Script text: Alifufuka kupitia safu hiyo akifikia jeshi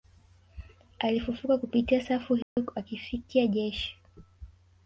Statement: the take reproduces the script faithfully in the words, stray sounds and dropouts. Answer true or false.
false